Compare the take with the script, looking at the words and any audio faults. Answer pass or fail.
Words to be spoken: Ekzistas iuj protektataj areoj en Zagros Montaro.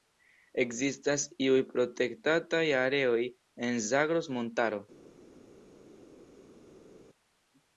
pass